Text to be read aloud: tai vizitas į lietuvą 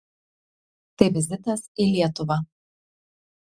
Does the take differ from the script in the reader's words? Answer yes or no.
no